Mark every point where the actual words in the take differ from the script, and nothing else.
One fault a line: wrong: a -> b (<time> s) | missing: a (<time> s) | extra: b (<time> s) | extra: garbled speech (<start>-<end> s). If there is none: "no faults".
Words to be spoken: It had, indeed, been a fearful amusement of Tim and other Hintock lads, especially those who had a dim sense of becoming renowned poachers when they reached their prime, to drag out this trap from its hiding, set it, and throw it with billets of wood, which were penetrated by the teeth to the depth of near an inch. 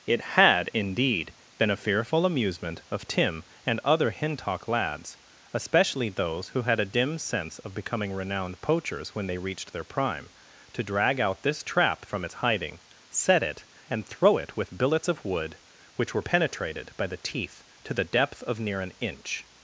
no faults